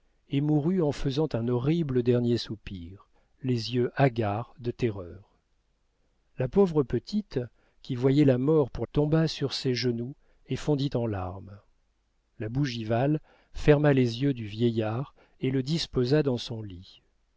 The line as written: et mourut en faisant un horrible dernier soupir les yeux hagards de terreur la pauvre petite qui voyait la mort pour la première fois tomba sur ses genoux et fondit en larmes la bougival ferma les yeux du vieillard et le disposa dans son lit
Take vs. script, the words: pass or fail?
fail